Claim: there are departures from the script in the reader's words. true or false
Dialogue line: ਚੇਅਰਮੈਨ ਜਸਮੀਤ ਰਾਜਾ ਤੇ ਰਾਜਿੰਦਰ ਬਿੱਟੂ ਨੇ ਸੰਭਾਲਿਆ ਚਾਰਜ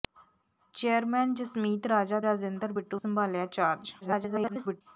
true